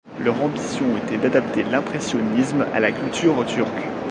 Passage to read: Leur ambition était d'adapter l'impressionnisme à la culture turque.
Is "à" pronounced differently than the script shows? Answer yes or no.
no